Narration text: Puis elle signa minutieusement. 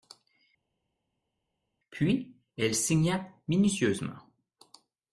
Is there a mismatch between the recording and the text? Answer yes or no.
no